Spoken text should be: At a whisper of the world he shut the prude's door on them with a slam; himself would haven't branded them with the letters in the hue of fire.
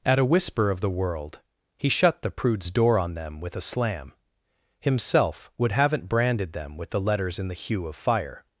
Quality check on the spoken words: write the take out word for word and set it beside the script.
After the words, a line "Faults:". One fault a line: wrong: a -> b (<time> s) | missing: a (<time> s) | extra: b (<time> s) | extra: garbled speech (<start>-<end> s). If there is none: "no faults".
At a whisper of the world he shut the prude's door on them with a slam; himself would haven't branded them with the letters in the hue of fire.
Faults:
no faults